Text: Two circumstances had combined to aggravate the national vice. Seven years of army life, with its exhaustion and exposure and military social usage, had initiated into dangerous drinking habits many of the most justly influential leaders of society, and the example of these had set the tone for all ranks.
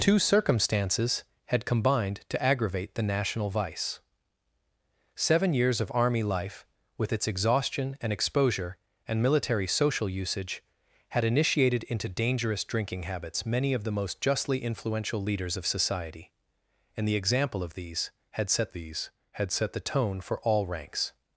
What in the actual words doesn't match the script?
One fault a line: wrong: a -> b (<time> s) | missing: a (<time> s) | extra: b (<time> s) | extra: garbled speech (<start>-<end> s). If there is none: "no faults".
extra: these had set (18.7 s)